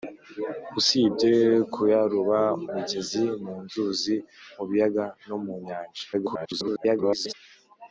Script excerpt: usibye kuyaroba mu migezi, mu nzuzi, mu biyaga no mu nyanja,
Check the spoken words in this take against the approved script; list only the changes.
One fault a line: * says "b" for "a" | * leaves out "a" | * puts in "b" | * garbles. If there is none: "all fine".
* leaves out "mu"
* garbles